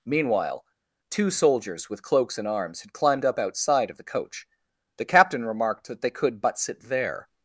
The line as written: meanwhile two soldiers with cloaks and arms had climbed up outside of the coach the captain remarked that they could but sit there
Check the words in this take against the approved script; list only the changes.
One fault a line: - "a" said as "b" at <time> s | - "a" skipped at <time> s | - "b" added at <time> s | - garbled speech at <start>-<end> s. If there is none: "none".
none